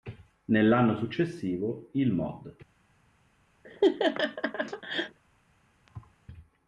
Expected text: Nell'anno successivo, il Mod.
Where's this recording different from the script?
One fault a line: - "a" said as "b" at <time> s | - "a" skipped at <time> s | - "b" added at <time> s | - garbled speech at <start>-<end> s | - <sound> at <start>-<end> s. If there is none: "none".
- laugh at 3.6-5.2 s
- thud at 5.9-6.2 s